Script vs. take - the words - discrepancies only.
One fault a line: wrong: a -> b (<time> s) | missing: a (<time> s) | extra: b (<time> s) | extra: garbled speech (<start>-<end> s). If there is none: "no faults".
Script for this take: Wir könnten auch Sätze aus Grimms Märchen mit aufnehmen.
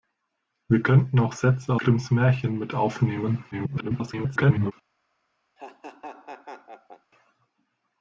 missing: aus (1.8 s)
extra: garbled speech (3.5-4.7 s)